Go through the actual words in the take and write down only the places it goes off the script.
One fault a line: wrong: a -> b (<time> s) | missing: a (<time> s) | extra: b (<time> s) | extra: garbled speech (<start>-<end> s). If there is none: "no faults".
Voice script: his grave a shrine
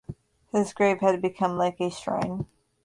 extra: had become like (1.0 s)